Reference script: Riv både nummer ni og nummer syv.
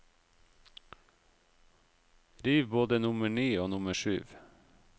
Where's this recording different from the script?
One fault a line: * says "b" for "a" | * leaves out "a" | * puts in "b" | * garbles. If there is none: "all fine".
all fine